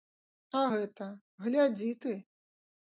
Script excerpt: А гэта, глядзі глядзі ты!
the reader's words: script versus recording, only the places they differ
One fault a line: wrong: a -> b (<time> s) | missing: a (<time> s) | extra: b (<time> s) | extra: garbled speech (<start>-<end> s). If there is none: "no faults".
missing: глядзі (1.9 s)